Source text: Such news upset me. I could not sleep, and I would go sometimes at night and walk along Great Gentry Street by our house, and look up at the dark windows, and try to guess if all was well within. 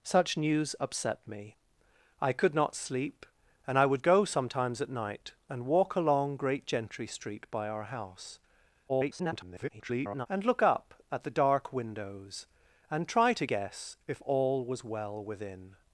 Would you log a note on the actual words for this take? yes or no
yes